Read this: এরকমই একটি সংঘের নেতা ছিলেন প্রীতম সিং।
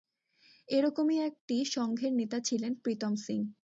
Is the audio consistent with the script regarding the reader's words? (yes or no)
yes